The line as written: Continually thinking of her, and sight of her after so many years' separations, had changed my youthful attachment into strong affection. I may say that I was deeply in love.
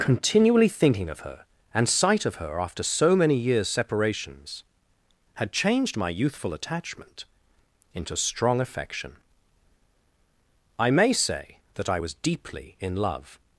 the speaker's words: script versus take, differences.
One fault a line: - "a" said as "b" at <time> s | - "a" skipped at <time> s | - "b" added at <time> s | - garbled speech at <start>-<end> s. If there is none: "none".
none